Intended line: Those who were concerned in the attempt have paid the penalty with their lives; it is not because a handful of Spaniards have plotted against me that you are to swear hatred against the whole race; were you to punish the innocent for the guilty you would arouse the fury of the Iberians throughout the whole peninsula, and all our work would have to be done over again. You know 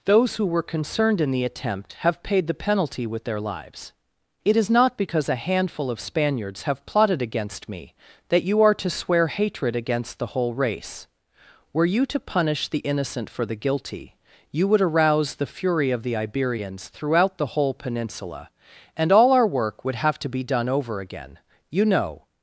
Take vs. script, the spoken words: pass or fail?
pass